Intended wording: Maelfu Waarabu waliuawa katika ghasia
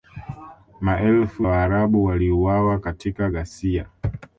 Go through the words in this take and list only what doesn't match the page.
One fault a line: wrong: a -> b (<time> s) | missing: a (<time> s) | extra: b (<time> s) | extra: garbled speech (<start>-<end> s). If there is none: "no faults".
no faults